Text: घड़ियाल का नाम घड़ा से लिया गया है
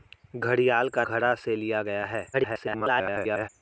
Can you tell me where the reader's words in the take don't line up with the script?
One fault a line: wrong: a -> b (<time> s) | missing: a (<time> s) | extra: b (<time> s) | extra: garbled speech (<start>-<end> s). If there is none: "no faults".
missing: नाम (1.0 s)
extra: garbled speech (2.3-3.5 s)